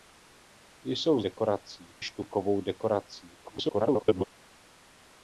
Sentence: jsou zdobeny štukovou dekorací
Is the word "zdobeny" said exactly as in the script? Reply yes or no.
no